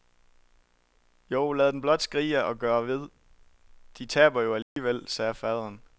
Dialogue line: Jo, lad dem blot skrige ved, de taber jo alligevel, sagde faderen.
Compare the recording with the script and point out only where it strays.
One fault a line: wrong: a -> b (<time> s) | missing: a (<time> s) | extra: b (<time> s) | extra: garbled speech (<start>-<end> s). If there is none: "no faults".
extra: og gøre (2.4 s)